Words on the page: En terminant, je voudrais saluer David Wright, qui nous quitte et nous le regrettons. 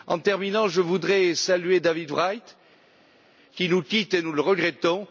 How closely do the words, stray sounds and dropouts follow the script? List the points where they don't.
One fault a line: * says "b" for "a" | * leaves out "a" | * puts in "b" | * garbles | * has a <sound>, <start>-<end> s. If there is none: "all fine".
all fine